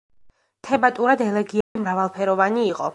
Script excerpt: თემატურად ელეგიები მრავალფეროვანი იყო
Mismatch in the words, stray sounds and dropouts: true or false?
true